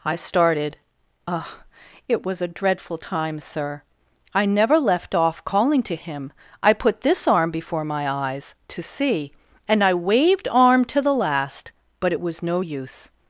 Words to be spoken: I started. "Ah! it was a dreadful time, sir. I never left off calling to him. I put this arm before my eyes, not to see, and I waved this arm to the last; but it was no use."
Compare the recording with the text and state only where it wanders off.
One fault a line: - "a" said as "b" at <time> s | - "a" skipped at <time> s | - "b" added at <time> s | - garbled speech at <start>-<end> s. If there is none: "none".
- "not" skipped at 8.6 s
- "this" skipped at 10.5 s